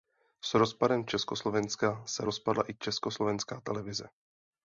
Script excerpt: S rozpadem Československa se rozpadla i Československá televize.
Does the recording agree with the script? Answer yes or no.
yes